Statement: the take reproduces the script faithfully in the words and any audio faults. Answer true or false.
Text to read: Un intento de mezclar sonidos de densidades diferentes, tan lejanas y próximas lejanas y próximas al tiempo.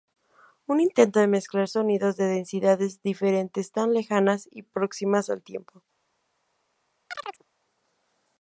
false